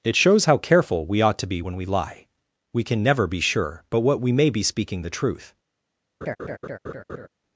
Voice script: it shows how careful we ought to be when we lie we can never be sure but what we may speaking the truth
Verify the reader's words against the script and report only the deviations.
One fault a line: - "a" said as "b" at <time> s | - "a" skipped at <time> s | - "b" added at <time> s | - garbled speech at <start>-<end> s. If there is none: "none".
- "be" added at 4.5 s